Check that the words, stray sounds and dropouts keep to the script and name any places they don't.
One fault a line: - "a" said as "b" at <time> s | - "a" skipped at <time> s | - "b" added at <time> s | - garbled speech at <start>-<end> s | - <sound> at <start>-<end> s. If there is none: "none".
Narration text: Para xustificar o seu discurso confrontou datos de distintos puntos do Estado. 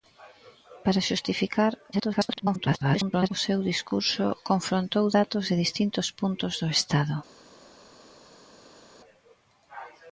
- garbled speech at 1.9-3.3 s